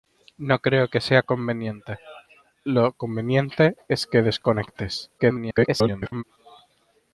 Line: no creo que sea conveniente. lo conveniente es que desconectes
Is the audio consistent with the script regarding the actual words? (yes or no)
no